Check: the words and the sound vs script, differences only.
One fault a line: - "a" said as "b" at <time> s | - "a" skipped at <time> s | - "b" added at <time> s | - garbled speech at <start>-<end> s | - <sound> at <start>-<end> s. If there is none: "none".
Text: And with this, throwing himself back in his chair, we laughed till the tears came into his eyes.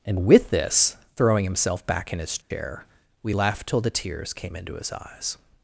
- dropout at 2.4-2.5 s